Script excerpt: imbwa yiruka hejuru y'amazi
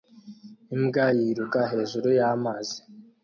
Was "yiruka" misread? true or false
false